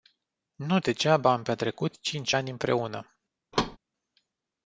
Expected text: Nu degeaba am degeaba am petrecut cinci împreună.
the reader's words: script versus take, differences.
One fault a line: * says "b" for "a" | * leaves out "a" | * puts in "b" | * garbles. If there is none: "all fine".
* leaves out "degeaba am"
* puts in "ani"